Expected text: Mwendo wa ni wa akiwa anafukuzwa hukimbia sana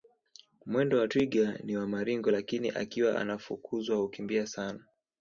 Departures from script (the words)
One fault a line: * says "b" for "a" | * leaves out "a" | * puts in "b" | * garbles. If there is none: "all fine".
* puts in "twiga"
* puts in "maringo lakini"